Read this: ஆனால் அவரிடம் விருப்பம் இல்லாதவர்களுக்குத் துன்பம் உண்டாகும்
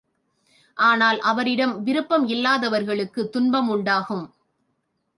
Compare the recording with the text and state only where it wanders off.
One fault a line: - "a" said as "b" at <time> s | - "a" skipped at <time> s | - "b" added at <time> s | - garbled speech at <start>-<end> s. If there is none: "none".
none